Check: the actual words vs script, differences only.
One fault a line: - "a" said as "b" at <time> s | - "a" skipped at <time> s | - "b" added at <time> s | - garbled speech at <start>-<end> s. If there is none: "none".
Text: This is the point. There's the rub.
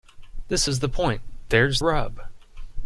- "the" skipped at 1.8 s